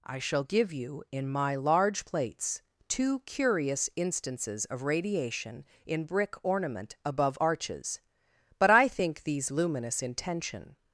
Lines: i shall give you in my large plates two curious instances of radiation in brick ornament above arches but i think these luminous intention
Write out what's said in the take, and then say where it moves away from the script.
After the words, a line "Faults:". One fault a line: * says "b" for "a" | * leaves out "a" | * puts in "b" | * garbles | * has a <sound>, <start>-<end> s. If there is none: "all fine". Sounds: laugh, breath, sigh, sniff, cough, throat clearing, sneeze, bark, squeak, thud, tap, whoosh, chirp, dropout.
i shall give you in my large plates two curious instances of radiation in brick ornament above arches but i think these luminous intention
Faults:
all fine